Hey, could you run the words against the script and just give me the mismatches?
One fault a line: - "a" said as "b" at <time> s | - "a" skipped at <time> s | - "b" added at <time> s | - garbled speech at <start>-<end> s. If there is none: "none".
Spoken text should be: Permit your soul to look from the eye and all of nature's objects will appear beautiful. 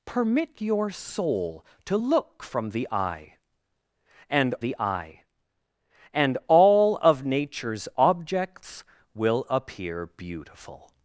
- "the eye and" added at 4.6 s